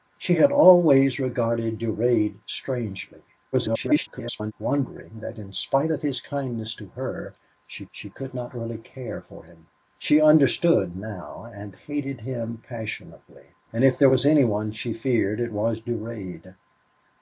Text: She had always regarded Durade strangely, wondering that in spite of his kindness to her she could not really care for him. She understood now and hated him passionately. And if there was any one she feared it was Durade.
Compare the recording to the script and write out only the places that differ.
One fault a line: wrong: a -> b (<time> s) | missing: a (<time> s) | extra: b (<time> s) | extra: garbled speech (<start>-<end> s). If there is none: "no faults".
extra: garbled speech (3.5-4.5 s)
extra: she (7.9 s)